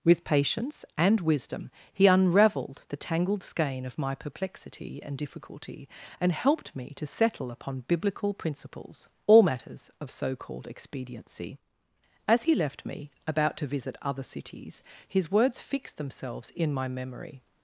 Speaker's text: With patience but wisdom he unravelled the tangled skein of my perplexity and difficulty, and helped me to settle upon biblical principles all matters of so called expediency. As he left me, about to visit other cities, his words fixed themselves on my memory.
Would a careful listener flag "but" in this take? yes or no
yes